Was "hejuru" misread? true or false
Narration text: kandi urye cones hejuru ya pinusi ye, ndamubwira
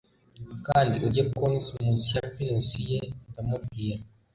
true